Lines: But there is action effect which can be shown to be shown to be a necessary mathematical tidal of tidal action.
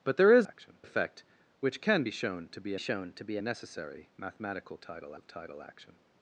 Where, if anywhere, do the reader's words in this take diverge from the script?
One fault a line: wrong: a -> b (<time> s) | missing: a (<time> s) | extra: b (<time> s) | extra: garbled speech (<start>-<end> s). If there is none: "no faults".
no faults